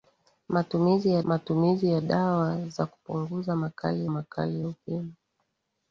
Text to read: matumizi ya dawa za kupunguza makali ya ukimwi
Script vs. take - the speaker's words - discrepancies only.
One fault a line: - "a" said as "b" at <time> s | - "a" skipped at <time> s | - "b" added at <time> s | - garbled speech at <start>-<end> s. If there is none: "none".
- "matumizi ya" added at 1.2 s
- "makali" added at 4.1 s